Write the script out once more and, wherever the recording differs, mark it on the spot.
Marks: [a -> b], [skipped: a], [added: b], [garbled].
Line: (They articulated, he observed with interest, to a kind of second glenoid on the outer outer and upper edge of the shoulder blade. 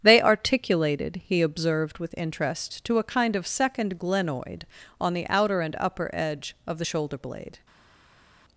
(They articulated, he observed with interest, to a kind of second glenoid on the outer [skipped: outer] and upper edge of the shoulder blade.